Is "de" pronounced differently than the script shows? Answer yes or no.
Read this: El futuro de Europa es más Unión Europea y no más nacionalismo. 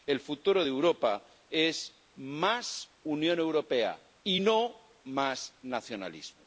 no